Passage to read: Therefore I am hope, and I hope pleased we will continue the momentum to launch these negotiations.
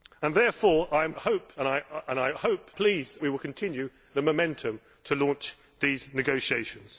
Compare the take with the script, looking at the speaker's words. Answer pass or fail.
pass